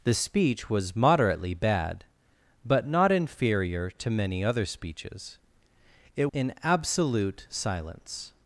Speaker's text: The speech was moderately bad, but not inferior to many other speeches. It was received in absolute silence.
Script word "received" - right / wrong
wrong